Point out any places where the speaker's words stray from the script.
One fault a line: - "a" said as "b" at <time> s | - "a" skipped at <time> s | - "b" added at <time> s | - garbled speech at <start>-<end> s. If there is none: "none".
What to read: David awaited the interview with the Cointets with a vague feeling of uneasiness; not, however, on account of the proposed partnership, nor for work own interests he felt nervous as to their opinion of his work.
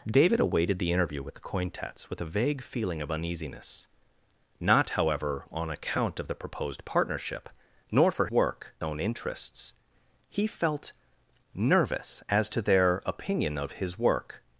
none